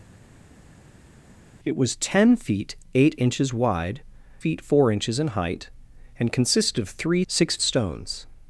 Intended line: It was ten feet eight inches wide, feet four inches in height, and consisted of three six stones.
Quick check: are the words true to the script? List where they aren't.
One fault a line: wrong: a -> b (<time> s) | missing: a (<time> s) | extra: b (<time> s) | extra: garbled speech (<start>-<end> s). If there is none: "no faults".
no faults